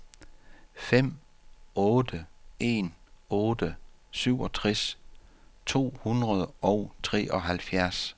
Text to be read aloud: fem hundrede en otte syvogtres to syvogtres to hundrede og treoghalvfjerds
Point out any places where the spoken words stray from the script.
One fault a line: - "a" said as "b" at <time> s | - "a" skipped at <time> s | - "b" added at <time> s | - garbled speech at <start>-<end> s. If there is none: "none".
- "hundrede" said as "otte" at 1.8 s
- "syvogtres to" skipped at 6.0 s